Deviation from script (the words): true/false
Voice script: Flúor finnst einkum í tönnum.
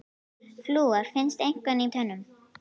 false